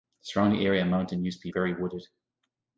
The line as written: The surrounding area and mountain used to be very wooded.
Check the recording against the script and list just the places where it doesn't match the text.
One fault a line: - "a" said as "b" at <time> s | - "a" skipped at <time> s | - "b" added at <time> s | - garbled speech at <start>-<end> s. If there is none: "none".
none